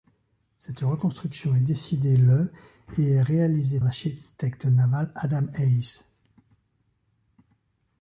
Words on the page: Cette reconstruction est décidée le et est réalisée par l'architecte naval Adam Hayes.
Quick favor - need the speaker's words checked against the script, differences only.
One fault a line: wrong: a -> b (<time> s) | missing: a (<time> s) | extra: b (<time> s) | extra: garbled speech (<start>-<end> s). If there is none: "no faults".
missing: par (3.8 s)